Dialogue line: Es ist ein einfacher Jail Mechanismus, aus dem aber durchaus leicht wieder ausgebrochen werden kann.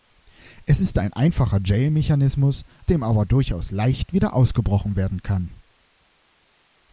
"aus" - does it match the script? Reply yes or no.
no